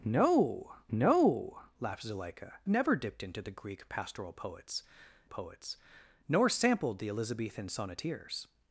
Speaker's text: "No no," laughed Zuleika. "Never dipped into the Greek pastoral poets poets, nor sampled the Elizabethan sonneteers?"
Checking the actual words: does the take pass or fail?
pass